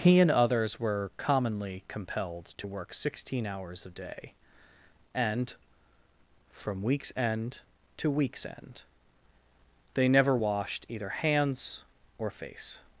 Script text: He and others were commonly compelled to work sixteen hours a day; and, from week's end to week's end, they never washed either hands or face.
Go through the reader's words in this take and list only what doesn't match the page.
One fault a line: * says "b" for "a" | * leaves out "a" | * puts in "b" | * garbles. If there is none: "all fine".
all fine